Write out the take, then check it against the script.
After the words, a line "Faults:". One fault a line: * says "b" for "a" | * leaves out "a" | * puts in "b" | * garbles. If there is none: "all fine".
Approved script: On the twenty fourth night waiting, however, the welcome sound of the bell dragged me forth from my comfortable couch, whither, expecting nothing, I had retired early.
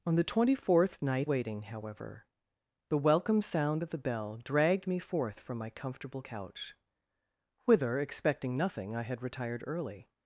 On the twenty fourth night waiting, however, the welcome sound of the bell dragged me forth from my comfortable couch, whither, expecting nothing, I had retired early.
Faults:
all fine